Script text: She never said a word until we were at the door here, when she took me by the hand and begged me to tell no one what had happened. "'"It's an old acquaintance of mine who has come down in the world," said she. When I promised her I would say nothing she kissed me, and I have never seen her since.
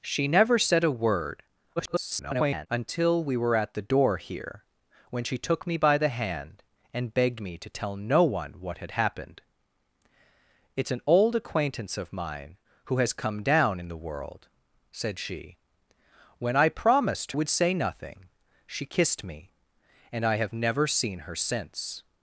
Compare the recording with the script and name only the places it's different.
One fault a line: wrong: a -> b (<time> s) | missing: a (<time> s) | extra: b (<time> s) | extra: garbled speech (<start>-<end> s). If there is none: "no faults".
extra: garbled speech (1.8-2.7 s)
missing: her I (17.3 s)